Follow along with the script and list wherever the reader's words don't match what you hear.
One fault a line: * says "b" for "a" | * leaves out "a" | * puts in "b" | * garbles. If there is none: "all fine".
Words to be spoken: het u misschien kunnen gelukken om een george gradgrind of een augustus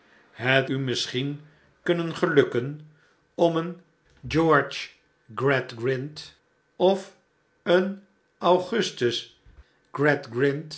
all fine